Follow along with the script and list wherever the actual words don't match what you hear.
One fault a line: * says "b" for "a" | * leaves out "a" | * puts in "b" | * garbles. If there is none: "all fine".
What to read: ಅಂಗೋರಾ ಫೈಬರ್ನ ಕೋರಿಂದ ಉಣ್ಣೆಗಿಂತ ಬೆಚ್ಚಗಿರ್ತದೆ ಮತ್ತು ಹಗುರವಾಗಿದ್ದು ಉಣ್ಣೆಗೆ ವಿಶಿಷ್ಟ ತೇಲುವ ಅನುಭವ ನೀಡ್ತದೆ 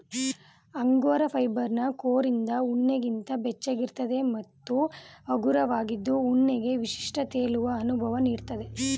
all fine